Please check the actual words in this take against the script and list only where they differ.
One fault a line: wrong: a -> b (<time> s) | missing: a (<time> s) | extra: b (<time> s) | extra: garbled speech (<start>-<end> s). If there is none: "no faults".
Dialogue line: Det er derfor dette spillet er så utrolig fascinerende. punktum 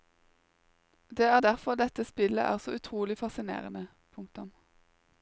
no faults